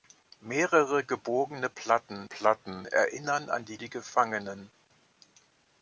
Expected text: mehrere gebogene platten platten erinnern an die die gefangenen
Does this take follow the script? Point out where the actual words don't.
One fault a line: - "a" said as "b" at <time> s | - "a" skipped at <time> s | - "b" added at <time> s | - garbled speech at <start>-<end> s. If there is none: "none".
none